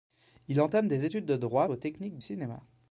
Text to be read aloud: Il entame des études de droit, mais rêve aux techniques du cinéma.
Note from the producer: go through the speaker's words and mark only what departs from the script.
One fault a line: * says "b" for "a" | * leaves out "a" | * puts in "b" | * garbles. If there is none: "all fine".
* leaves out "mais rêve"
* leaves out "du"